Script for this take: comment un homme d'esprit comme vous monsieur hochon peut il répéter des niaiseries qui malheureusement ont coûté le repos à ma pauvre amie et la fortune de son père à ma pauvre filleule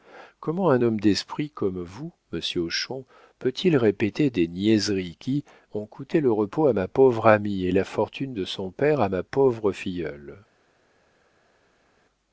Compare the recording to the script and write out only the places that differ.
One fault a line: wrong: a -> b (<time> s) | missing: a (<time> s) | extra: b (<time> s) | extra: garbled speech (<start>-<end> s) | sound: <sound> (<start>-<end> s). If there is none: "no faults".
missing: malheureusement (5.4 s)